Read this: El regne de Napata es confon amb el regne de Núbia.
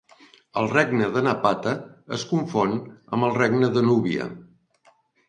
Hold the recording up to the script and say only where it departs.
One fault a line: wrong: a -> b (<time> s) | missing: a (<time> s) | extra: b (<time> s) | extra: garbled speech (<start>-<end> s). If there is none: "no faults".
no faults